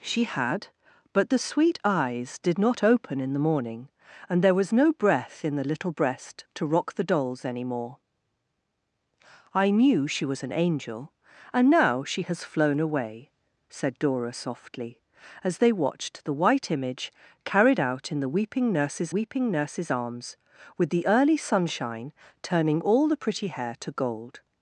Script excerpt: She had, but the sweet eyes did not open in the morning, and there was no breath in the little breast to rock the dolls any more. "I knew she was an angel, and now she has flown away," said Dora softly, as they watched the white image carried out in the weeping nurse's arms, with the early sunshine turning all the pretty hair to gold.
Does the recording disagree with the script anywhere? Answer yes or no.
yes